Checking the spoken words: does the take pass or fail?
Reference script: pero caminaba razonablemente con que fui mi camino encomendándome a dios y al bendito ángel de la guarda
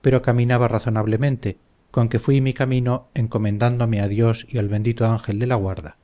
pass